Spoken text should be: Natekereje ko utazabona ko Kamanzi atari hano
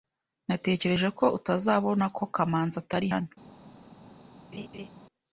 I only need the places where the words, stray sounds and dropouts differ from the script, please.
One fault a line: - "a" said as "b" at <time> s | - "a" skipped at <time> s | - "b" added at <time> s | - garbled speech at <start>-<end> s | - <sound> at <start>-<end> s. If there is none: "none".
- laugh at 4.5-4.9 s